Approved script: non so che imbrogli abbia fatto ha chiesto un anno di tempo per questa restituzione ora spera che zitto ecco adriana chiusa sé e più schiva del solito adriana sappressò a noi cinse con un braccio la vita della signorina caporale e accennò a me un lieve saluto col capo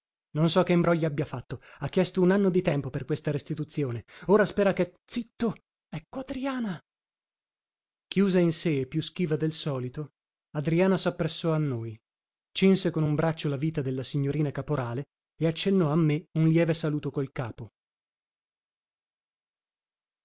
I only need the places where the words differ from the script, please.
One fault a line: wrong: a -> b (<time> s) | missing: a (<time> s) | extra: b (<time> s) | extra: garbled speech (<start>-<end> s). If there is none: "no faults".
extra: in (8.4 s)